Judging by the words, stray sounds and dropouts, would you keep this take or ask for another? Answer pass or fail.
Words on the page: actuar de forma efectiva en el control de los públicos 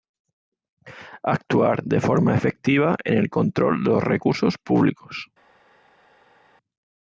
fail